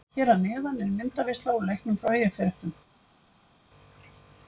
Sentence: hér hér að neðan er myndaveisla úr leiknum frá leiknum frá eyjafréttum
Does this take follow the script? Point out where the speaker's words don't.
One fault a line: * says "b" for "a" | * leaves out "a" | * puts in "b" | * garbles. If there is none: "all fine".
* leaves out "hér"
* leaves out "leiknum frá"